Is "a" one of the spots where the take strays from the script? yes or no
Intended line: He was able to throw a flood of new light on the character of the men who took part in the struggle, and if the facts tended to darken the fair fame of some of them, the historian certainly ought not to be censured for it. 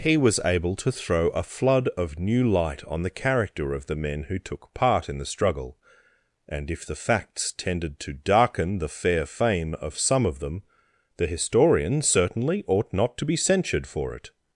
no